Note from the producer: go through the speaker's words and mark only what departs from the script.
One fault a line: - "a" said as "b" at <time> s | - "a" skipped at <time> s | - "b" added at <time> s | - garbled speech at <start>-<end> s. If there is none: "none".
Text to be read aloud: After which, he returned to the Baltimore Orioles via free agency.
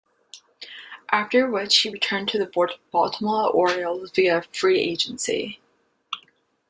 none